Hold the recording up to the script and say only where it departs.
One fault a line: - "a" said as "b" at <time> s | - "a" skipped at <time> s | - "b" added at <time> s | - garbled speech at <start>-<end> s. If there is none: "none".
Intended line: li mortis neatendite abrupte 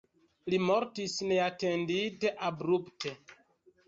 none